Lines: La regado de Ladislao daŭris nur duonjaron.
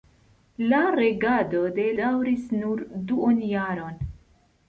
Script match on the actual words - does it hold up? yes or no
no